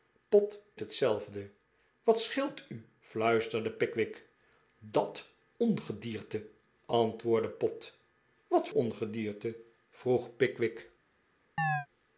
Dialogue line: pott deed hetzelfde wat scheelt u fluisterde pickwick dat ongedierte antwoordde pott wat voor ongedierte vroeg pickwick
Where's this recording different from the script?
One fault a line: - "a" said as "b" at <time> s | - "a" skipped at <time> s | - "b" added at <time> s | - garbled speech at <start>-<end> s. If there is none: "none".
- "deed" skipped at 0.6 s
- "voor" skipped at 8.7 s